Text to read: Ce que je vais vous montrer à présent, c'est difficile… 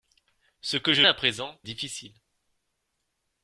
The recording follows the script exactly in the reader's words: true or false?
false